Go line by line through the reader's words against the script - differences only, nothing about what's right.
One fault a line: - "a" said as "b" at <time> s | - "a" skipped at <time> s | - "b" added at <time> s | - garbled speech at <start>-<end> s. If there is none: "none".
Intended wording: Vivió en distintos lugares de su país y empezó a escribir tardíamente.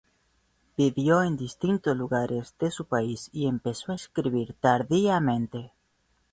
none